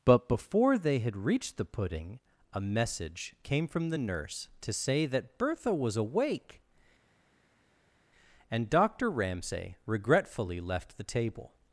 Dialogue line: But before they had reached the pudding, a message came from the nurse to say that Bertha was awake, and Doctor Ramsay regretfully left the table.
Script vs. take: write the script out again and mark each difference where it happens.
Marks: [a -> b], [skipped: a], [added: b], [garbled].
But before they had reached the pudding, a message came from the nurse to say that Bertha was awake, and Doctor Ramsay regretfully left the table.